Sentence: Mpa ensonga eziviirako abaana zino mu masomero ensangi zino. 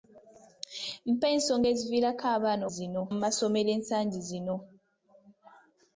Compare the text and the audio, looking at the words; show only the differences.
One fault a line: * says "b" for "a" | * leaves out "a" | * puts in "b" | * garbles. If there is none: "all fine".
all fine